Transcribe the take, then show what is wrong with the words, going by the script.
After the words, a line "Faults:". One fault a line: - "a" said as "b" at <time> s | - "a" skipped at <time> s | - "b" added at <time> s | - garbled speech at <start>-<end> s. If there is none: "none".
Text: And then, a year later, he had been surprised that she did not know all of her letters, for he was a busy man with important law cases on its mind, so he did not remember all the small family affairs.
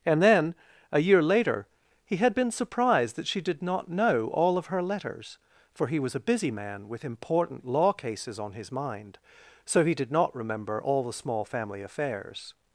And then, a year later, he had been surprised that she did not know all of her letters, for he was a busy man with important law cases on his mind, so he did not remember all the small family affairs.
Faults:
- "its" said as "his" at 8.5 s